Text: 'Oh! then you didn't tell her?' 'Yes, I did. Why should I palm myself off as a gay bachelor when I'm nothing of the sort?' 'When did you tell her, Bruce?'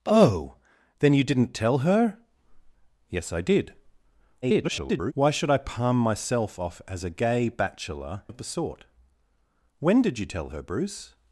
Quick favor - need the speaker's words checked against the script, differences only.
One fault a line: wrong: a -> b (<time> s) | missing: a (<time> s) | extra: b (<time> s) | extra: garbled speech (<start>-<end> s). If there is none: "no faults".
extra: garbled speech (4.4-5.1 s)
missing: when I'm nothing (8.2 s)